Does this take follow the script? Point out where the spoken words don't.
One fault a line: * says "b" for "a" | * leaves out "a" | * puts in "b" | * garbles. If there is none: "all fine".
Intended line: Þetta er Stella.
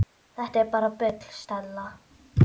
* puts in "bara bull"